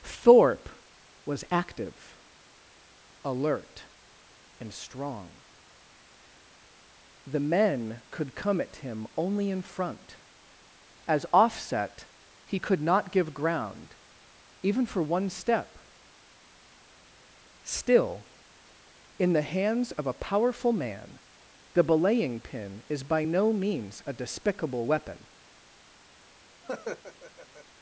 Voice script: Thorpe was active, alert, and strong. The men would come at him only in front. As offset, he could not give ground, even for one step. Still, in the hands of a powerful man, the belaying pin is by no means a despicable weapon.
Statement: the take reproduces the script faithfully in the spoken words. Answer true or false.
false